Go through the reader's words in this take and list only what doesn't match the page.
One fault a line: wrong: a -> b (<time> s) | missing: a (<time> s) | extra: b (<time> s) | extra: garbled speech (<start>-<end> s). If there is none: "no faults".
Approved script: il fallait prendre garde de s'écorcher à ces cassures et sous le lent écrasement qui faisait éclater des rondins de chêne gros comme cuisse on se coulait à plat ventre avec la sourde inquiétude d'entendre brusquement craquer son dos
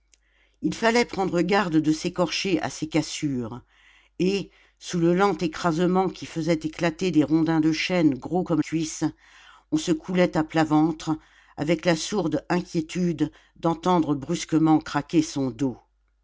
no faults